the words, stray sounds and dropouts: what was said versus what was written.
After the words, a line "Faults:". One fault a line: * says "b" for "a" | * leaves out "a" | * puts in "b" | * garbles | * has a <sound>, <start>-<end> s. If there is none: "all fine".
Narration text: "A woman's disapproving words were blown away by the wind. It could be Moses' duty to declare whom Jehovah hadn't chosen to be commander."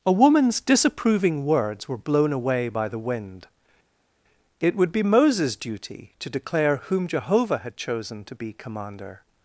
"A woman's disapproving words were blown away by the wind. It would be Moses' duty to declare whom Jehovah had chosen to be commander."
Faults:
* says "would" for "could"
* says "had" for "hadn't"